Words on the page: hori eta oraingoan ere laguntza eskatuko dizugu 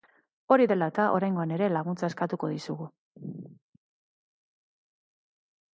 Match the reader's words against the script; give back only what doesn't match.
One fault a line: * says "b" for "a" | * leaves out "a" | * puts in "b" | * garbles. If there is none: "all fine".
* puts in "dela"